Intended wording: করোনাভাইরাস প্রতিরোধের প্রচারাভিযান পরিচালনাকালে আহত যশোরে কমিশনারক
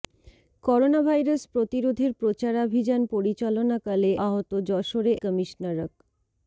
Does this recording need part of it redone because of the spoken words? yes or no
no